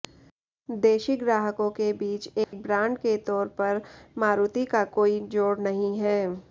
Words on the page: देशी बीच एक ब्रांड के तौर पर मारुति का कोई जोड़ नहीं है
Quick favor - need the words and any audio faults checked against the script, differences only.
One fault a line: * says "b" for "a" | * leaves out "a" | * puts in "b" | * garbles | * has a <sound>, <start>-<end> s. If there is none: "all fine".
* puts in "ग्राहकों के"
* has a dropout, 2.4-2.5 s